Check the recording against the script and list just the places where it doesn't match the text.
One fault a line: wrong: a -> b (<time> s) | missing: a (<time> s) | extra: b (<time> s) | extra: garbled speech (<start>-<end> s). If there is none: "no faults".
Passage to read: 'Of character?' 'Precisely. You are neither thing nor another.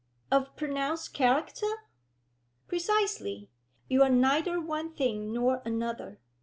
extra: pronounced (0.6 s)
extra: one (4.6 s)